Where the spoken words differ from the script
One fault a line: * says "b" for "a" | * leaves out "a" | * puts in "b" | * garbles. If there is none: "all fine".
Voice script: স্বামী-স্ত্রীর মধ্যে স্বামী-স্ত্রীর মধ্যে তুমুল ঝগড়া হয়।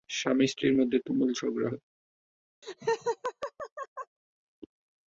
* leaves out "স্বামী-স্ত্রীর মধ্যে"